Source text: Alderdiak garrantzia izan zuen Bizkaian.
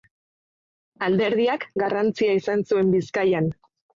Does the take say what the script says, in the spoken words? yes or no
yes